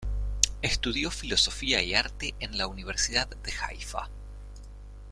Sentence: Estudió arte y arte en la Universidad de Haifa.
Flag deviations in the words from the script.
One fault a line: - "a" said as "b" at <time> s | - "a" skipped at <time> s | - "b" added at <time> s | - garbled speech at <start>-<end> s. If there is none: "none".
- "arte" said as "filosofía" at 1.1 s